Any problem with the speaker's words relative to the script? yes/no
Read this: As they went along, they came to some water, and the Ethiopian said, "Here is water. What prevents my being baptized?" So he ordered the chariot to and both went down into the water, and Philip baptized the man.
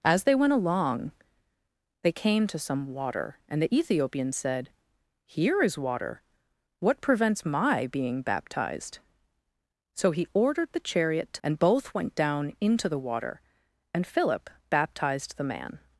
no